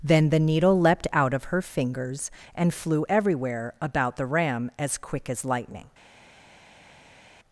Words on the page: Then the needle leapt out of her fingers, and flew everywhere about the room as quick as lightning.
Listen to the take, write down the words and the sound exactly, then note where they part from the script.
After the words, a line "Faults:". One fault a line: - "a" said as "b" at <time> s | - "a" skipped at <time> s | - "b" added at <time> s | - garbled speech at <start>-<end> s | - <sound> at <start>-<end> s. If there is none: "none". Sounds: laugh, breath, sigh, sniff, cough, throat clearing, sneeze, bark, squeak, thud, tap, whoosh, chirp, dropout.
Then the needle leapt out of her fingers, and flew everywhere about the ram as quick as lightning.
Faults:
- "room" said as "ram" at 4.2 s